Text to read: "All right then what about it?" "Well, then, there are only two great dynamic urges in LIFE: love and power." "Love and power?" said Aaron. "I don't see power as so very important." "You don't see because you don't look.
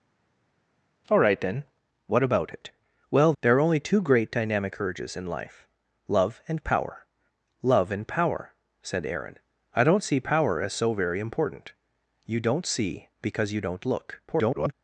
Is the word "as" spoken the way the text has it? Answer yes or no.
yes